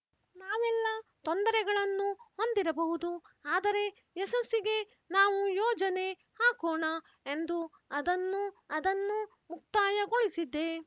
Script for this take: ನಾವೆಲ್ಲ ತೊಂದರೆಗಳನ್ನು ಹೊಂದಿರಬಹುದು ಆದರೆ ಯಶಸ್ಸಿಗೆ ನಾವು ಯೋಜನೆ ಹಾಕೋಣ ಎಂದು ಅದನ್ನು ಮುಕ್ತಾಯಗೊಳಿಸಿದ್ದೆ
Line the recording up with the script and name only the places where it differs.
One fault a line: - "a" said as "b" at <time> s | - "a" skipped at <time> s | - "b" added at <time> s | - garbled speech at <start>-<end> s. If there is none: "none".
- "ಅದನ್ನು" added at 8.7 s